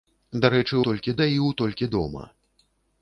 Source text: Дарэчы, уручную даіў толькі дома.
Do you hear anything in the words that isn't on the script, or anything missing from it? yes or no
yes